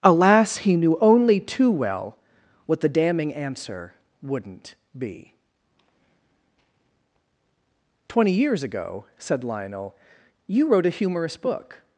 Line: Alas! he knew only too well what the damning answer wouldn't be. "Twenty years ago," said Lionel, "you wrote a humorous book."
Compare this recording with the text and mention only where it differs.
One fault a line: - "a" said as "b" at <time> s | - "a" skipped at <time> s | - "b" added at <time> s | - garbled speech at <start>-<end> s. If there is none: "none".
none